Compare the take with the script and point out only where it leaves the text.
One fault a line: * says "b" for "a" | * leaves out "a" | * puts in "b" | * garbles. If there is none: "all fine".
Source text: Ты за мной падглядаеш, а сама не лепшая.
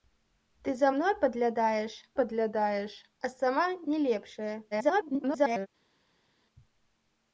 * puts in "падглядаеш"
* garbles